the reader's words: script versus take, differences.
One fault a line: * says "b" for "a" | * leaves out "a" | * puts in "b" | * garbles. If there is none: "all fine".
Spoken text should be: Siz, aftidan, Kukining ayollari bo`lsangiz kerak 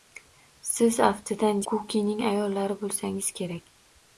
all fine